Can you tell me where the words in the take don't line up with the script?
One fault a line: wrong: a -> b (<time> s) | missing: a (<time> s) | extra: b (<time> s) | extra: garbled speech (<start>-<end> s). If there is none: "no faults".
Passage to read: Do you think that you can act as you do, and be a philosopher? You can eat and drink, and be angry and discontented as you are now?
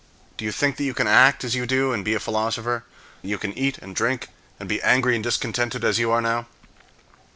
no faults